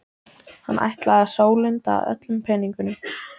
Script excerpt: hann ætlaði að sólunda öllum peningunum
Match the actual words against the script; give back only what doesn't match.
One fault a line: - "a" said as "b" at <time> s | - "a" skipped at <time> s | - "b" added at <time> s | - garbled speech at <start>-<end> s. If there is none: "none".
none